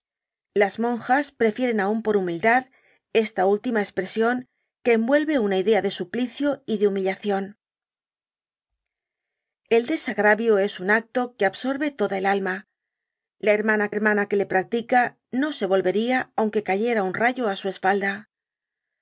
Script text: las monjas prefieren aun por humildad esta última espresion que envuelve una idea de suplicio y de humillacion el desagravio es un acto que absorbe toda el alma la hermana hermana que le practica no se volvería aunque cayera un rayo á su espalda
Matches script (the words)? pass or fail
pass